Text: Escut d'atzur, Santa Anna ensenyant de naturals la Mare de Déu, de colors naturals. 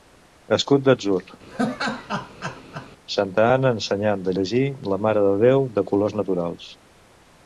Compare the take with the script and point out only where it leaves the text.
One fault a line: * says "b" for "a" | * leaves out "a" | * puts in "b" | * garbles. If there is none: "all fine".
* says "llegir" for "naturals"